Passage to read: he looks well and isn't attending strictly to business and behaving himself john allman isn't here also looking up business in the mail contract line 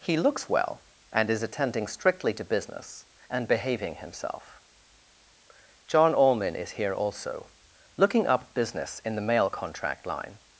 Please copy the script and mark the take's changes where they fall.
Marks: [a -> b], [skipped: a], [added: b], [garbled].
he looks well and [isn't -> is] attending strictly to business and behaving himself john allman [isn't -> is] here also looking up business in the mail contract line